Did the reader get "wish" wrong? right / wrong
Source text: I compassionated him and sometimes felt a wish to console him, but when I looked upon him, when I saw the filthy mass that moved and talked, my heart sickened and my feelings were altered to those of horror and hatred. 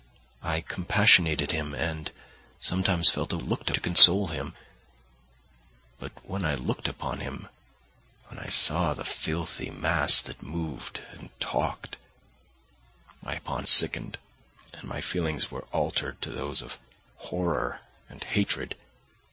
wrong